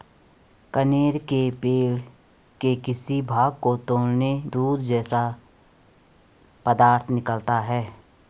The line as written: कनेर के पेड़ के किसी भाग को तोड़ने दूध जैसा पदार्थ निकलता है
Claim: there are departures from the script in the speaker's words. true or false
false